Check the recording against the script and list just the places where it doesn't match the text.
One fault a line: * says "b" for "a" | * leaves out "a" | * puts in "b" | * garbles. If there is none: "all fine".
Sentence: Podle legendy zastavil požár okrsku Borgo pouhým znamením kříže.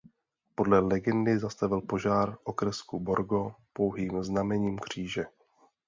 all fine